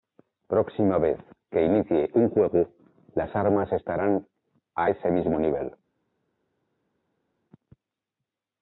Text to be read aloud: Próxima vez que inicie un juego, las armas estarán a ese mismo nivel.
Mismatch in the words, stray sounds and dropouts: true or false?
false